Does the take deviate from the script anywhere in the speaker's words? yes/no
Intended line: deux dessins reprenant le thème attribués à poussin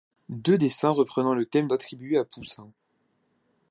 no